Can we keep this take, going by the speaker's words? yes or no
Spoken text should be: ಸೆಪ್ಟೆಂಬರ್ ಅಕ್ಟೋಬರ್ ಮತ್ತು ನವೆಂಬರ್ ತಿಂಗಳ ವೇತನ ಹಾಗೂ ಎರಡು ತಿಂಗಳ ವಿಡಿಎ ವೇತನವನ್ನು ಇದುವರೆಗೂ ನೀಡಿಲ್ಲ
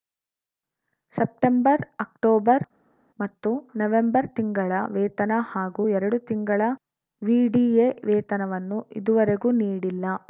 yes